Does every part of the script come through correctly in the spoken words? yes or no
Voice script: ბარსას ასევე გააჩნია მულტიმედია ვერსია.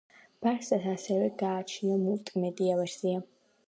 yes